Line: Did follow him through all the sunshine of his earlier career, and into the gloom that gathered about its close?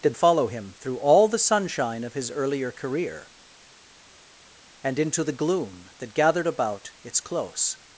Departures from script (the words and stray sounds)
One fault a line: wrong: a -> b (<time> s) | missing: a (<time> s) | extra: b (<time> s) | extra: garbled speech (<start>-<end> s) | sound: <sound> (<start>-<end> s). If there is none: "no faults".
no faults